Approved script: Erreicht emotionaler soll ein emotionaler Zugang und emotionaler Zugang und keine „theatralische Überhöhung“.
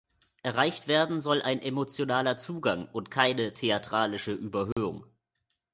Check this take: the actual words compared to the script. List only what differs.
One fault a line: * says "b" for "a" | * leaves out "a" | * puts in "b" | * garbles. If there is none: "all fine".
* says "werden" for "emotionaler"
* leaves out "emotionaler Zugang und"